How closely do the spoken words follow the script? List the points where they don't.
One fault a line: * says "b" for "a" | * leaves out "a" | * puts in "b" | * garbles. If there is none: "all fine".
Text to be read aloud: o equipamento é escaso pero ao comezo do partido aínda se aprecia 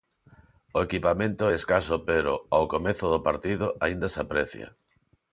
all fine